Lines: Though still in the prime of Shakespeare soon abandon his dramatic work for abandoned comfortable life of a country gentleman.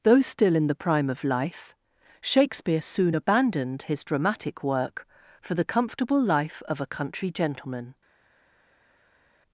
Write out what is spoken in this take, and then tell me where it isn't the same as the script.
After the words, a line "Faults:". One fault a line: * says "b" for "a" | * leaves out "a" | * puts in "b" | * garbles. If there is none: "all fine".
Though still in the prime of life, Shakespeare soon abandoned his dramatic work for the comfortable life of a country gentleman.
Faults:
* puts in "life"
* says "abandoned" for "abandon"
* says "the" for "abandoned"